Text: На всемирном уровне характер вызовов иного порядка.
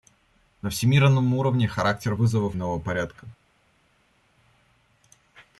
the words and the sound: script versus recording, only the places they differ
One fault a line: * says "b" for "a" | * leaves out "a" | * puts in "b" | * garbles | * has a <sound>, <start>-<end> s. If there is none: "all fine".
all fine